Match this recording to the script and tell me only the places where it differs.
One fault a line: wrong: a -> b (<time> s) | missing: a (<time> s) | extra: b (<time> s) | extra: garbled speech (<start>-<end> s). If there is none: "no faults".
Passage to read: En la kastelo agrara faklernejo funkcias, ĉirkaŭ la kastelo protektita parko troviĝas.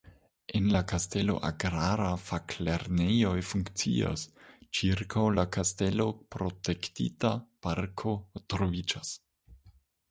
no faults